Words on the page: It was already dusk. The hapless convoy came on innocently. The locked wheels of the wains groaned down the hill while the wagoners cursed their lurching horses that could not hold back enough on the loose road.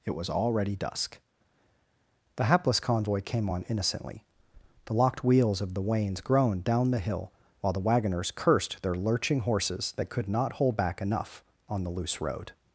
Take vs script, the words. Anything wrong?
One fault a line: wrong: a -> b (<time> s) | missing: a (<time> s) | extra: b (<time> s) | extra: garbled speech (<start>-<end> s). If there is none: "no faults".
no faults